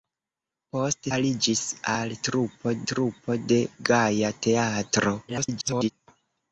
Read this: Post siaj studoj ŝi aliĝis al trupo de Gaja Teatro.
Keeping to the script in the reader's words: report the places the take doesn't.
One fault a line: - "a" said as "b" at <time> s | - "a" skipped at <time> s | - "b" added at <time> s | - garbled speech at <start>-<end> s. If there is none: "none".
- "siaj studoj ŝi" skipped at 1.1 s
- "trupo" added at 2.9 s
- garbled speech at 5.3-5.9 s